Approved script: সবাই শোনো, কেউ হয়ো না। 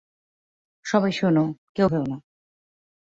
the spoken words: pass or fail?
pass